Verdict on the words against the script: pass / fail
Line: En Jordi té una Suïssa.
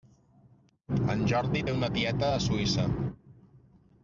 fail